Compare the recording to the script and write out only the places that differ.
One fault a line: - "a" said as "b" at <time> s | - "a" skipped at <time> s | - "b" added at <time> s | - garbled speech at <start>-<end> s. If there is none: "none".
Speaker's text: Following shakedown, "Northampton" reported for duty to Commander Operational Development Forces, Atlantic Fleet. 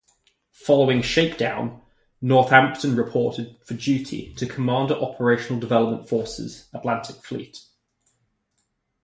none